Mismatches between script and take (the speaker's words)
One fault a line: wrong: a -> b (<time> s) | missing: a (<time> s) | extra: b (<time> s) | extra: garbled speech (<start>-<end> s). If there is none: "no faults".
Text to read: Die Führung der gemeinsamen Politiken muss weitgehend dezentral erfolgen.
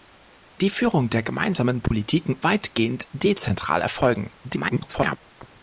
missing: muss (2.4 s)
extra: garbled speech (4.4-5.2 s)